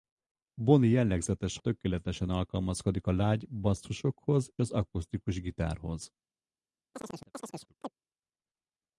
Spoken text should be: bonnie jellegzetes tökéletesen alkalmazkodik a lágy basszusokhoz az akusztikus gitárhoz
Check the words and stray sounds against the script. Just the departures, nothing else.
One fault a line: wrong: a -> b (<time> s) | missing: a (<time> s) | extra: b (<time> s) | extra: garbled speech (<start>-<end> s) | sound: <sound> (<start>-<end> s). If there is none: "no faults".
sound: chirp (6.9-7.9 s)